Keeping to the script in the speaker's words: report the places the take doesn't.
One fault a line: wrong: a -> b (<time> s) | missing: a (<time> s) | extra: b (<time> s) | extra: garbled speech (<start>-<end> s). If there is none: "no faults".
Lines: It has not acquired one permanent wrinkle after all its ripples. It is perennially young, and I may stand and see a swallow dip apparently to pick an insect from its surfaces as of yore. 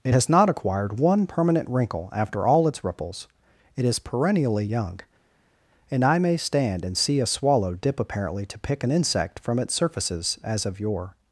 no faults